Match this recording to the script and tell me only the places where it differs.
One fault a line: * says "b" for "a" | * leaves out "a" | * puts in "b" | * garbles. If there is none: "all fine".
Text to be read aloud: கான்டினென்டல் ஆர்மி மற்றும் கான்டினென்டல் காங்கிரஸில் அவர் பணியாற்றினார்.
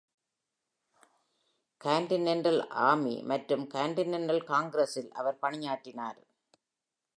all fine